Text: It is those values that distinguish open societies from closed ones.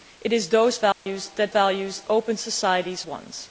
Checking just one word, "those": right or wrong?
right